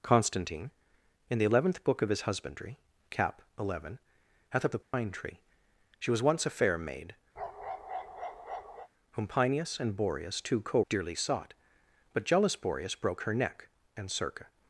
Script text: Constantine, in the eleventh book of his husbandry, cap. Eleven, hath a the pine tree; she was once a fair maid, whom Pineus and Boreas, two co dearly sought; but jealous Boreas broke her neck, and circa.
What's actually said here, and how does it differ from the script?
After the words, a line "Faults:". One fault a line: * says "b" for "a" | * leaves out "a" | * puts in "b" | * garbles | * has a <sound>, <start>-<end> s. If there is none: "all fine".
Constantine, in the eleventh book of his husbandry, cap. Eleven, hath a the pine tree; she was once a fair maid, whom Pineus and Boreas, two co dearly sought; but jealous Boreas broke her neck, and circa.
Faults:
* has a dropout, 4.8-4.9 s
* has a bark, 7.4-8.9 s